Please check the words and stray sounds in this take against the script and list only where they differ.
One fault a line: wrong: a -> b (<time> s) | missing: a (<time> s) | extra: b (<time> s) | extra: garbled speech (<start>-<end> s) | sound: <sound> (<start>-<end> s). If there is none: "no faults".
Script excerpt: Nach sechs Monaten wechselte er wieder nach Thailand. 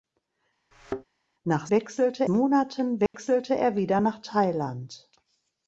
sound: thud (0.7-1.0 s)
wrong: sechs -> wechselte (1.7 s)
sound: dropout (3.1-3.1 s)